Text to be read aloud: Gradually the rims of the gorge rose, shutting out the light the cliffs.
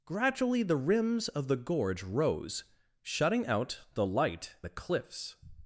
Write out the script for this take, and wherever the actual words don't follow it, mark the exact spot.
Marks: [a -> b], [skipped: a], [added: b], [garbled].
Gradually the rims of the gorge rose, shutting out the light the cliffs.